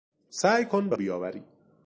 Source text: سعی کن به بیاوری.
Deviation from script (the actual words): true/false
false